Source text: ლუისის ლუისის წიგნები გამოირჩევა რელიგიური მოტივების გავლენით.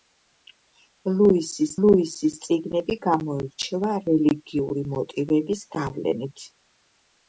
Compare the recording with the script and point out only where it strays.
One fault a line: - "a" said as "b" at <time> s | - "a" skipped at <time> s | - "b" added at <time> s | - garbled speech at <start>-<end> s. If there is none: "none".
none